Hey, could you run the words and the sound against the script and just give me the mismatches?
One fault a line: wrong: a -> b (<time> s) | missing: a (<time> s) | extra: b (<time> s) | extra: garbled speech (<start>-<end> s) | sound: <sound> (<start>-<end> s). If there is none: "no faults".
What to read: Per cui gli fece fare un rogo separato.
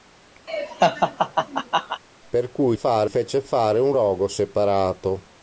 sound: laugh (0.5-2.0 s)
wrong: gli -> fare (2.7 s)